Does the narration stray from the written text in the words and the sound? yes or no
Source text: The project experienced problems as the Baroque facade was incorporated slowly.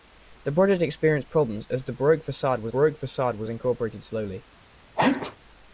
yes